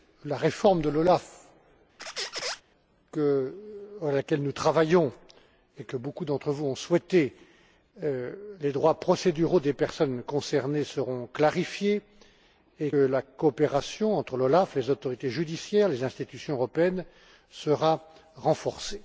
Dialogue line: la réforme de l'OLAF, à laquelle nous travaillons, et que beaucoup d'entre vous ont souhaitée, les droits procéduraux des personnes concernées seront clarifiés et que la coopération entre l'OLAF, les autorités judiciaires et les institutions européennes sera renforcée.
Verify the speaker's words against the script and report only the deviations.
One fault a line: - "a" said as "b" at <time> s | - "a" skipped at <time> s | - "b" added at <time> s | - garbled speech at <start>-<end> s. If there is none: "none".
- "que" skipped at 12.9 s